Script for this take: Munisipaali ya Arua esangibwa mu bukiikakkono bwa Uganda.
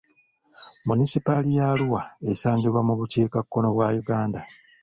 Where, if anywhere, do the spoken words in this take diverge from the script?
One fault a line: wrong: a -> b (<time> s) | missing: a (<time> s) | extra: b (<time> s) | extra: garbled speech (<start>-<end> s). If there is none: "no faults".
no faults